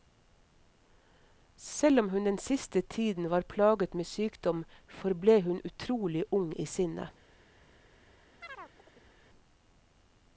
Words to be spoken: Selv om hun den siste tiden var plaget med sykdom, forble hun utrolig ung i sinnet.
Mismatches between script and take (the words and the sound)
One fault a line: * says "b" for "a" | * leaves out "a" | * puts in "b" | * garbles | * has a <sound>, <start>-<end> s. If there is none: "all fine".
* has a chirp, 8.4-9.1 s